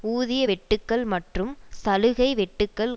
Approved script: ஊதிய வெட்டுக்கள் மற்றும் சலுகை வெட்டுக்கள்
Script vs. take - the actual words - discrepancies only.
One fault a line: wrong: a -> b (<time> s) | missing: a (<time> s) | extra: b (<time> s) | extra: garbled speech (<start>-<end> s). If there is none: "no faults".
no faults